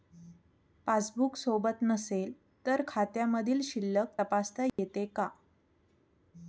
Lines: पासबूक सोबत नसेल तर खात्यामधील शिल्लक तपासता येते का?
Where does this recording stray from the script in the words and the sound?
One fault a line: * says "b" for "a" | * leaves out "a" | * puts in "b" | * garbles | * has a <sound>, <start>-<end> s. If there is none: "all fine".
* has a dropout, 4.7-4.8 s